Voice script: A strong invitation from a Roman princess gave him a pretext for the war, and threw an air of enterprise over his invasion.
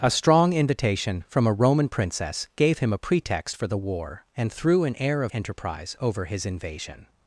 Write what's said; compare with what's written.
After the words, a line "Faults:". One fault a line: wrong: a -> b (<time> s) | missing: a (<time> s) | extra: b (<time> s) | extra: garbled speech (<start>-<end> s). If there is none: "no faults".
A strong invitation from a Roman princess gave him a pretext for the war, and threw an air of enterprise over his invasion.
Faults:
no faults